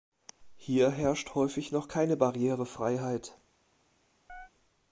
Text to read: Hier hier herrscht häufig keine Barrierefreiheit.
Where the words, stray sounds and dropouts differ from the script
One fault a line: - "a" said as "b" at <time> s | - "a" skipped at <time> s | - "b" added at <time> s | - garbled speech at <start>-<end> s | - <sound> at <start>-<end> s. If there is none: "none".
- "hier" skipped at 0.9 s
- "noch" added at 1.7 s
- chirp at 4.3-4.5 s